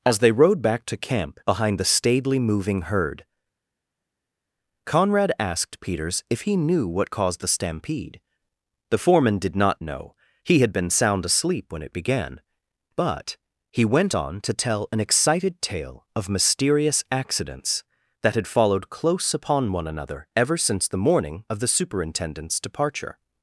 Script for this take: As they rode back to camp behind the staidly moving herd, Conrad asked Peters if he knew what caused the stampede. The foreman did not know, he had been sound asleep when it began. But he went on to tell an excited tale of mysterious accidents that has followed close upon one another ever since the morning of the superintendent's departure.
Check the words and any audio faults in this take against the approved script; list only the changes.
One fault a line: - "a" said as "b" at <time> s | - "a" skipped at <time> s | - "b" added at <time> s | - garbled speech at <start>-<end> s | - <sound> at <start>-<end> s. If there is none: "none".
- "has" said as "had" at 18.3 s